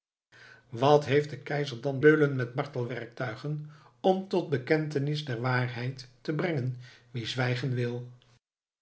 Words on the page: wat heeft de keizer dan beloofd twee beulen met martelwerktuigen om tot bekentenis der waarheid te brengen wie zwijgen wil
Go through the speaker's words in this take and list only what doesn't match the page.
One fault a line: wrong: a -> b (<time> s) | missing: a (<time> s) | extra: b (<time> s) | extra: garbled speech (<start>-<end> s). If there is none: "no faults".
missing: beloofd twee (2.0 s)